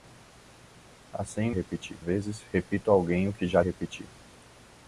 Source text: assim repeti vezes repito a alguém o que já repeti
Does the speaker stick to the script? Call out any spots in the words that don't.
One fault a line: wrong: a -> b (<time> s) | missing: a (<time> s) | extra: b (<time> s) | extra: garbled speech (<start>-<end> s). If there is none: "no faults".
no faults